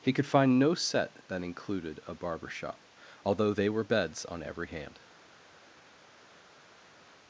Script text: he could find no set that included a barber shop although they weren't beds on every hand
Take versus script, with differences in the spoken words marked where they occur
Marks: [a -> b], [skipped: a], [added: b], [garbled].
he could find no set that included a barber shop although they [weren't -> were] beds on every hand